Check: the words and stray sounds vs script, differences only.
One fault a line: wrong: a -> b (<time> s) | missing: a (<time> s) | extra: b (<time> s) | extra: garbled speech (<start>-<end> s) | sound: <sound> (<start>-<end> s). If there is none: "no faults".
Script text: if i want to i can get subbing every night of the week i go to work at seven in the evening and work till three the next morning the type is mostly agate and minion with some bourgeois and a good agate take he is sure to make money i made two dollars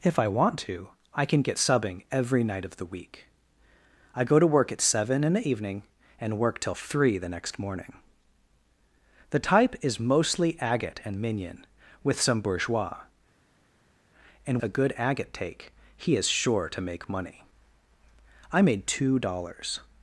no faults